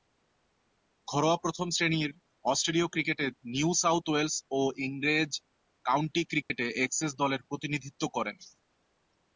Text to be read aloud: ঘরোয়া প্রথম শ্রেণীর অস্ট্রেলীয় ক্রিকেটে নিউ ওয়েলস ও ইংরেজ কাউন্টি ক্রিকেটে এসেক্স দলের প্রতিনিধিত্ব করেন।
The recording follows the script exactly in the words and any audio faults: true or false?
false